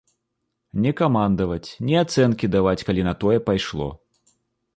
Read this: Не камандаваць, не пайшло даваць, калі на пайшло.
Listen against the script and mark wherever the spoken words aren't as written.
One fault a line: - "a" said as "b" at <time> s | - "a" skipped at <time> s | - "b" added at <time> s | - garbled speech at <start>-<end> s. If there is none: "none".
- "пайшло" said as "ацэнкі" at 2.0 s
- "тое" added at 3.2 s